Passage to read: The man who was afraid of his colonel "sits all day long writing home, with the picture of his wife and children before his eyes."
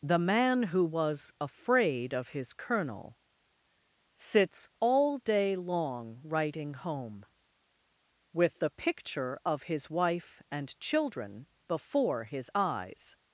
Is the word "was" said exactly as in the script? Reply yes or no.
yes